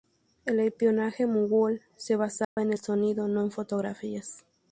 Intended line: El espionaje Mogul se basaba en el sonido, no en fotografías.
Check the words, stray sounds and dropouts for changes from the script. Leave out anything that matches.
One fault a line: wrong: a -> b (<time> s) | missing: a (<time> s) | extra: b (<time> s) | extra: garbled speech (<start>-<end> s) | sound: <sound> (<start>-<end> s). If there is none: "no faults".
sound: dropout (2.4-2.6 s)